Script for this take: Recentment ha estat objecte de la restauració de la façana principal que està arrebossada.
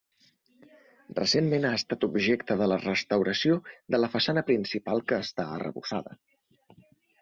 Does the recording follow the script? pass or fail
pass